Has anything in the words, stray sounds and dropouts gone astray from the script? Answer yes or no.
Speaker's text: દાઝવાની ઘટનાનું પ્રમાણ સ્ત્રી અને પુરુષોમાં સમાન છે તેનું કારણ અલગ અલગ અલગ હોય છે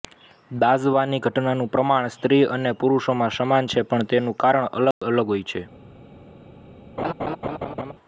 yes